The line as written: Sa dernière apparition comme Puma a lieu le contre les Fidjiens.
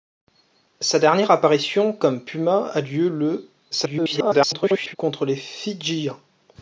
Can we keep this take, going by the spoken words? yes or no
no